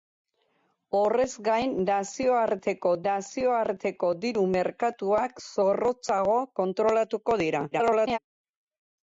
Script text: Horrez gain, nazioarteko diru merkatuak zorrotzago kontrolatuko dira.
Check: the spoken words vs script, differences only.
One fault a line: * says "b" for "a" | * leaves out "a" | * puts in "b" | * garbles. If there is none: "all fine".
* puts in "nazioarteko"
* garbles